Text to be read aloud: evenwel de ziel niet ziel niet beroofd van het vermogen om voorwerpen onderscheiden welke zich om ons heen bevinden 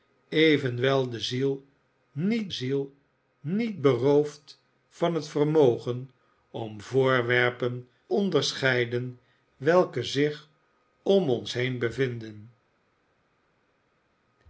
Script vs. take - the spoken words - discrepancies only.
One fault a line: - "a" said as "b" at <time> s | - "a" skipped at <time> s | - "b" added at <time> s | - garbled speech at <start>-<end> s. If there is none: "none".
none